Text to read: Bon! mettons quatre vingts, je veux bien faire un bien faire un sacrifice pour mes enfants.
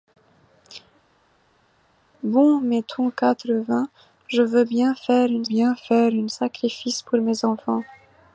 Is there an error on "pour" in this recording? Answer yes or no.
no